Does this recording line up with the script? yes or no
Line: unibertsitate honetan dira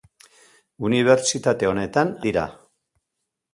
yes